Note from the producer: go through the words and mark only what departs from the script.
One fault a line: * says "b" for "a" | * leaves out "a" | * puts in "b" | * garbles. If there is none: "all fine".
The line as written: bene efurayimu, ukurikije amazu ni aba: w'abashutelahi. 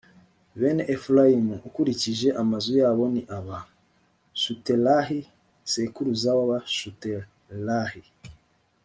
* puts in "yabo"
* puts in "shutelahi sekuruza"